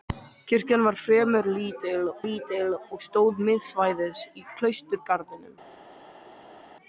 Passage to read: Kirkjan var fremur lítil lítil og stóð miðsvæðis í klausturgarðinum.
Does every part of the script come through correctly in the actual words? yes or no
yes